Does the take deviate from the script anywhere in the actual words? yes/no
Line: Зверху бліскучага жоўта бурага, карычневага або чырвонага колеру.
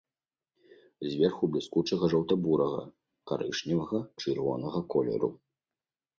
yes